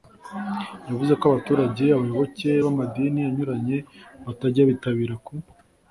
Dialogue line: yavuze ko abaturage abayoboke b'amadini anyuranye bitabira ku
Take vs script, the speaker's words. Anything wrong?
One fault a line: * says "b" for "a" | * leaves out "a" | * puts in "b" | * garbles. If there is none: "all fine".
* puts in "batajya"